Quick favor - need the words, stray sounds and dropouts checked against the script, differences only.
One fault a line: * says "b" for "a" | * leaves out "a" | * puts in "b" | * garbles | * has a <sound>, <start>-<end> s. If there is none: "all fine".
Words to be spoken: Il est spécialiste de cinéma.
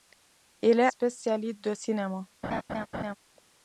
* has a laugh, 2.4-3.2 s